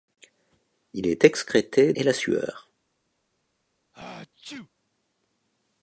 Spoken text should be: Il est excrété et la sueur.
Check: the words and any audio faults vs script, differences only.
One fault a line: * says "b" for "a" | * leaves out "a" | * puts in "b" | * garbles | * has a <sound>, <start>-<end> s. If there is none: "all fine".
* has a sneeze, 3.9-4.7 s